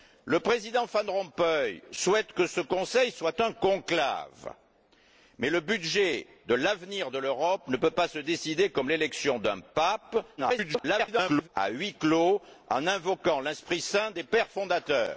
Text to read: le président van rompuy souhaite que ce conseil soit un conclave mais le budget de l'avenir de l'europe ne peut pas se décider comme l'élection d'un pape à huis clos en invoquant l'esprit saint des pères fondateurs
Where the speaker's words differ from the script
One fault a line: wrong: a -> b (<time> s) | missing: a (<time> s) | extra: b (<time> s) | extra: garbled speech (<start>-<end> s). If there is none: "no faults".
extra: garbled speech (10.4-11.5 s)